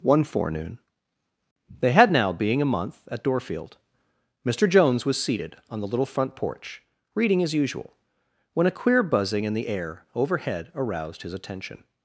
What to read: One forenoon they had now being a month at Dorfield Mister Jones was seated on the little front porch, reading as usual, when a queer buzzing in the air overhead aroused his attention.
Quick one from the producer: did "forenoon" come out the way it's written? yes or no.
yes